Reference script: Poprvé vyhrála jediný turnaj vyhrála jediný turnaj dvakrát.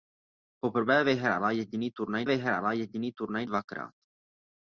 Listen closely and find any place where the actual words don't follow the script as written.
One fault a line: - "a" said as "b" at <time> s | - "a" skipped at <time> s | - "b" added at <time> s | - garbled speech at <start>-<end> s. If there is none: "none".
none